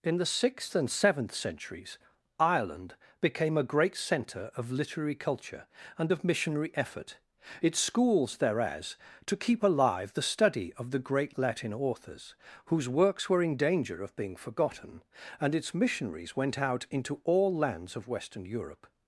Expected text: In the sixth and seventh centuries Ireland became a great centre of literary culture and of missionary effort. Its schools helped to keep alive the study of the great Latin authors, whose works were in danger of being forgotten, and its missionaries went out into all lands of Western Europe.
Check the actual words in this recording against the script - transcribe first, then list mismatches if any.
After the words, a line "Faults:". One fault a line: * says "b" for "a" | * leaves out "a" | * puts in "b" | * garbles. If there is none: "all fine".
In the sixth and seventh centuries Ireland became a great centre of literary culture and of missionary effort. Its schools thereas to keep alive the study of the great Latin authors, whose works were in danger of being forgotten, and its missionaries went out into all lands of Western Europe.
Faults:
* says "thereas" for "helped"